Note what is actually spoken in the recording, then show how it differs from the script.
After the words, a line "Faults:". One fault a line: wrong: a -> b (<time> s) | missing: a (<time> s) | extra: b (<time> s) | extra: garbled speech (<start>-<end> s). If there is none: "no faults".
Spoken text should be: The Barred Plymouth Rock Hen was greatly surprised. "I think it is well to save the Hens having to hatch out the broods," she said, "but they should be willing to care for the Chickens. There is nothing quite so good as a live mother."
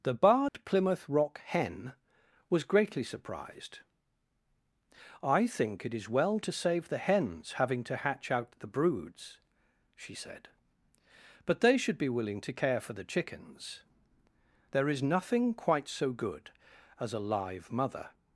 The Barred Plymouth Rock Hen was greatly surprised. "I think it is well to save the Hens having to hatch out the broods," she said, "but they should be willing to care for the Chickens. There is nothing quite so good as a live mother."
Faults:
no faults